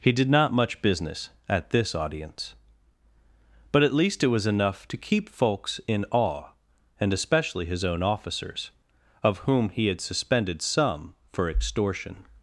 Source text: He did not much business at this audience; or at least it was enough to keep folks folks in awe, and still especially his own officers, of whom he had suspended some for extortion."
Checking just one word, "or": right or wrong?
wrong